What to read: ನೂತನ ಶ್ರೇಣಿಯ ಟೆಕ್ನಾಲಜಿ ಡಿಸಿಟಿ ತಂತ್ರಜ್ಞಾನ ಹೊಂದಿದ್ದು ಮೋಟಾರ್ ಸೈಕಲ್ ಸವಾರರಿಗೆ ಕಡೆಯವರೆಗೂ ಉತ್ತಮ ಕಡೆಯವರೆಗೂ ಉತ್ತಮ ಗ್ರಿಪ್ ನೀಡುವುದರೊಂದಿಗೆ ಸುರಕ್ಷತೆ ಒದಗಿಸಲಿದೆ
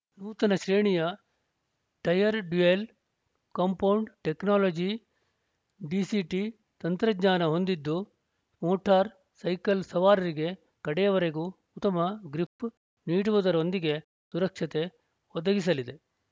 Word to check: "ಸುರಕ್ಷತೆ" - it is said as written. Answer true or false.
true